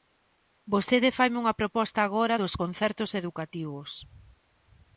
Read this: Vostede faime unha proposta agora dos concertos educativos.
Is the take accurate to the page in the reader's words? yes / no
yes